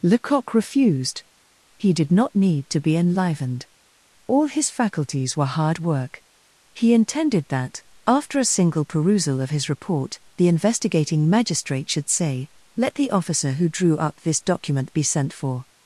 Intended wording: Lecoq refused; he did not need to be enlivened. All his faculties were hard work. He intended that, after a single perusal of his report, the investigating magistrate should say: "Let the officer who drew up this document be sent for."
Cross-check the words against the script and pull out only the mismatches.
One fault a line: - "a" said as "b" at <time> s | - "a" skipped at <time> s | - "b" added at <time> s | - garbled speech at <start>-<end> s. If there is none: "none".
none